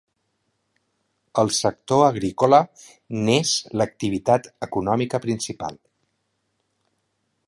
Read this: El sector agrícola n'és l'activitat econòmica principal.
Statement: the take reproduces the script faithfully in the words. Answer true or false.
true